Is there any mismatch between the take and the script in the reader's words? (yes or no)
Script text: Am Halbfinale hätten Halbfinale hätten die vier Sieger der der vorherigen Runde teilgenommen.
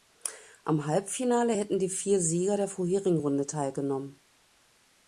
yes